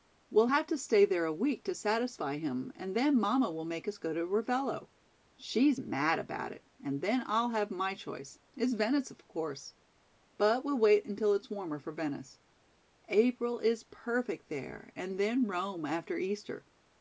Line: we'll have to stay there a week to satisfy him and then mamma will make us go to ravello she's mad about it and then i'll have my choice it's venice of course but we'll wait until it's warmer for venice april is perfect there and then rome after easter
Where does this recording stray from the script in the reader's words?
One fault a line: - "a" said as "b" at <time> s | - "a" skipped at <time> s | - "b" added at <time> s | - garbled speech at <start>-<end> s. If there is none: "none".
none